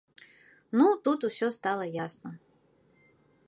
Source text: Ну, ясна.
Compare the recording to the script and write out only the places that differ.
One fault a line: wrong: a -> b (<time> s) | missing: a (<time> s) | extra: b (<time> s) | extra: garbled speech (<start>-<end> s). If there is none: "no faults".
extra: тут усё стала (1.1 s)